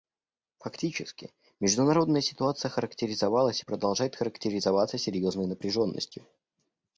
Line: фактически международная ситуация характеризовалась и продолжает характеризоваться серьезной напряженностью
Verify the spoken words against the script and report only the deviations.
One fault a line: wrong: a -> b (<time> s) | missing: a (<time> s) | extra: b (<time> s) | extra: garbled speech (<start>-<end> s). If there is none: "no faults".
no faults